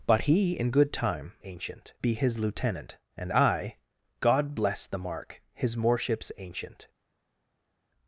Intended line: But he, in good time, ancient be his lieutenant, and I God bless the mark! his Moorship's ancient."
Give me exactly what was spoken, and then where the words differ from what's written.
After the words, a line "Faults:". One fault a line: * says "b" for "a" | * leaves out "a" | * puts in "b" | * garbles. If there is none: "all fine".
But he, in good time, ancient be his lieutenant, and I God bless the mark! his Moorship's ancient."
Faults:
all fine